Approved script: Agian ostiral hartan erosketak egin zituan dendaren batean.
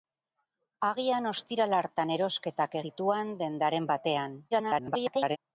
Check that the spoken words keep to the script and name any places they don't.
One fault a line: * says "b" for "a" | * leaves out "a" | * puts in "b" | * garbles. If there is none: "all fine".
* leaves out "egin"
* garbles